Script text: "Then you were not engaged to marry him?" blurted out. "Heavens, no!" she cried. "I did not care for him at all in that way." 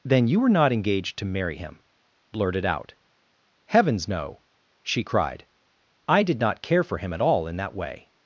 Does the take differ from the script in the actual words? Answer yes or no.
no